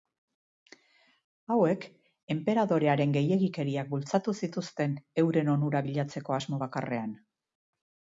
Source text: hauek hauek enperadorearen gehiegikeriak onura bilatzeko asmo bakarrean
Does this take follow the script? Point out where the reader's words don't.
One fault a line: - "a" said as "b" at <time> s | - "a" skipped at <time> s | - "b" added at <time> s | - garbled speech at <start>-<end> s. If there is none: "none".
- "hauek" skipped at 1.8 s
- "bultzatu zituzten euren" added at 3.9 s